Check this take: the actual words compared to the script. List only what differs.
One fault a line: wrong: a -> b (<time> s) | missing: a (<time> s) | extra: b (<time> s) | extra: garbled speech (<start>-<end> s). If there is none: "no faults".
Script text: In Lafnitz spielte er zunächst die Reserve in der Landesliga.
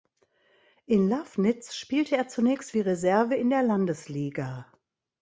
no faults